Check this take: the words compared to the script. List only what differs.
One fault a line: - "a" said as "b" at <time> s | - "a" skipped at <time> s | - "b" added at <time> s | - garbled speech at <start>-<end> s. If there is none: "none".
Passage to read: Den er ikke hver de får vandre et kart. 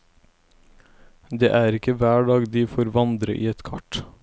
- "Den" said as "Det" at 1.3 s
- "dag" added at 2.3 s
- "i" added at 3.4 s